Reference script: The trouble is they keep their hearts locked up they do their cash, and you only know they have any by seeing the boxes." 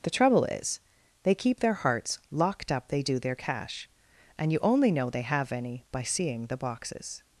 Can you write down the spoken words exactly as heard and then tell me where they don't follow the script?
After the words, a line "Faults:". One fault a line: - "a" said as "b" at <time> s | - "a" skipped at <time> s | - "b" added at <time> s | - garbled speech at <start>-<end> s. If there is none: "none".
The trouble is they keep their hearts locked up they do their cash, and you only know they have any by seeing the boxes."
Faults:
none